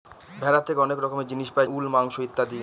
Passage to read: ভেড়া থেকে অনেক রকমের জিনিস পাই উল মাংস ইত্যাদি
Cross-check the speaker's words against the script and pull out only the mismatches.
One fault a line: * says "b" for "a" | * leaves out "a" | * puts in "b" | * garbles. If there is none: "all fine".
all fine